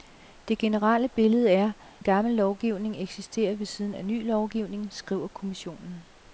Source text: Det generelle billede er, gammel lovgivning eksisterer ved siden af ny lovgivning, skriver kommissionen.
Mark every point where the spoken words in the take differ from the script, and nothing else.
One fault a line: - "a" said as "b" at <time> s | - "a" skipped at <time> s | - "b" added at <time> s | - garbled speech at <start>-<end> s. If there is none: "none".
none